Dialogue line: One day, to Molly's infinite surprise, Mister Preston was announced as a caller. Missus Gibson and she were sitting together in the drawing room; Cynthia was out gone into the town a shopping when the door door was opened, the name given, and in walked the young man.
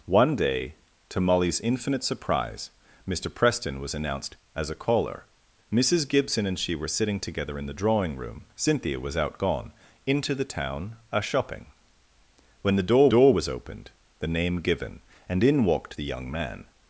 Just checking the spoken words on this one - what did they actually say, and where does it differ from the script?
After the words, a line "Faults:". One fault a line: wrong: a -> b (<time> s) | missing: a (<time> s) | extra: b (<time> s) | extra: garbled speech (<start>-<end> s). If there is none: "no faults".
One day, to Molly's infinite surprise, Mister Preston was announced as a caller. Missus Gibson and she were sitting together in the drawing room; Cynthia was out gone into the town a shopping when the door door was opened, the name given, and in walked the young man.
Faults:
no faults